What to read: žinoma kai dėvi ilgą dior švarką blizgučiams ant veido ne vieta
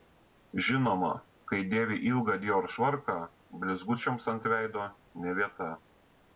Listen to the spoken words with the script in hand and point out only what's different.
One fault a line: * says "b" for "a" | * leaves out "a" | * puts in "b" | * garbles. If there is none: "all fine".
all fine